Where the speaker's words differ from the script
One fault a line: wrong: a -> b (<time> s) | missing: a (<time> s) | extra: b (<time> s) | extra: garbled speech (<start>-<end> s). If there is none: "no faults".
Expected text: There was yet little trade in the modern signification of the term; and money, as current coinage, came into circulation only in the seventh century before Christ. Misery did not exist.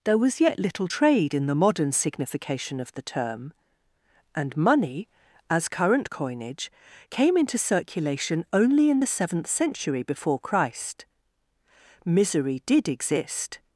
missing: not (12.9 s)